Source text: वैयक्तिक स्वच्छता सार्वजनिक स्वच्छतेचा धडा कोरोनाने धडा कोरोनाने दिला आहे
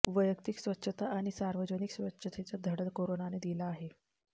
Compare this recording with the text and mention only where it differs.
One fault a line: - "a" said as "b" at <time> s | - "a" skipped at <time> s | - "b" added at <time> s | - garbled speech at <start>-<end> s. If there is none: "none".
- "आणि" added at 1.2 s
- "धडा कोरोनाने" skipped at 3.4 s